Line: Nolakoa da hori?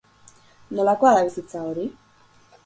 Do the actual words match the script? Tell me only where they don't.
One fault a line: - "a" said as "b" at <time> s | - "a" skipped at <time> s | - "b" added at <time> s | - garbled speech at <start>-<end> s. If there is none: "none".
- "bizitza" added at 1.2 s